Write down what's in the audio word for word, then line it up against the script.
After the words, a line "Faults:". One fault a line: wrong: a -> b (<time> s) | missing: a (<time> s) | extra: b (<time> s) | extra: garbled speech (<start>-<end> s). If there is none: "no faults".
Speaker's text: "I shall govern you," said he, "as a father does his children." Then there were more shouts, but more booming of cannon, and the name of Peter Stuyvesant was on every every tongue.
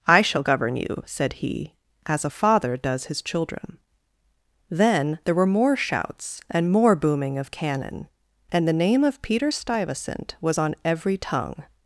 "I shall govern you," said he, "as a father does his children." Then there were more shouts, and more booming of cannon, and the name of Peter Stuyvesant was on every tongue.
Faults:
wrong: but -> and (6.5 s)
missing: every (11.2 s)